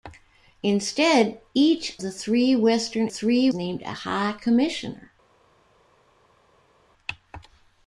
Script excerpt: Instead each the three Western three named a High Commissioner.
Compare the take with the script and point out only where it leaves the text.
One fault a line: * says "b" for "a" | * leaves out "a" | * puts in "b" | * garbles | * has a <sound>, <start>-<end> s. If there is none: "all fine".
all fine